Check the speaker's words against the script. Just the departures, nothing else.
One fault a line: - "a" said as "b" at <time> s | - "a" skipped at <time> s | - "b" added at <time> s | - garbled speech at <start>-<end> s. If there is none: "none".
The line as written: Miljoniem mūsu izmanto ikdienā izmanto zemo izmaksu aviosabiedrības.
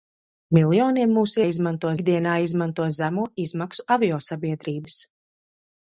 none